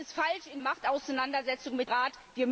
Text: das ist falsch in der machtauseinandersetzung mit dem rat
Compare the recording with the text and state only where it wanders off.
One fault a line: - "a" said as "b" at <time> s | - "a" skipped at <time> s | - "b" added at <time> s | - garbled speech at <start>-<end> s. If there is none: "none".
- "der" skipped at 0.6 s
- "dem" skipped at 1.9 s